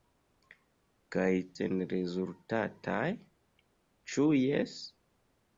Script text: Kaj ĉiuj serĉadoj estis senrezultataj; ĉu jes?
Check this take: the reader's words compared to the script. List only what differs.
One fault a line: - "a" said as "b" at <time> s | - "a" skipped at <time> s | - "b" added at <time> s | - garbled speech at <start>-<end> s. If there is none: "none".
- "ĉiuj serĉadoj estis" skipped at 1.3 s